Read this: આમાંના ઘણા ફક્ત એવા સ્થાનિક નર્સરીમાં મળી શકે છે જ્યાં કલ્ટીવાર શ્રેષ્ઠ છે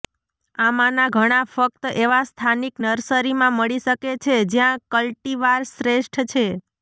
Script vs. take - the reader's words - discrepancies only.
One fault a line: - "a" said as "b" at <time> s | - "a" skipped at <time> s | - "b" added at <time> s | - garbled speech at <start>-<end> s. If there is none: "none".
none